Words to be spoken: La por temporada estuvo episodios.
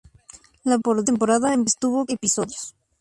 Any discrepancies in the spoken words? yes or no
no